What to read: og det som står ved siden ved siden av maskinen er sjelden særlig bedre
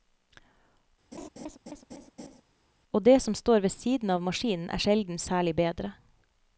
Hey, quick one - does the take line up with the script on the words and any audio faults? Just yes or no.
no